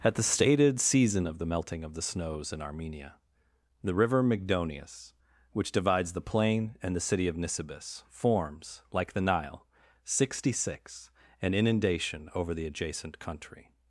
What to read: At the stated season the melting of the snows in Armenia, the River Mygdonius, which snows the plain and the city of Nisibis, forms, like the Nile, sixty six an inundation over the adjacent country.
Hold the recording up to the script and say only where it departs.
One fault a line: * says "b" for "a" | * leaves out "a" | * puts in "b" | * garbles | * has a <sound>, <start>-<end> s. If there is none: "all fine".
* puts in "of"
* says "divides" for "snows"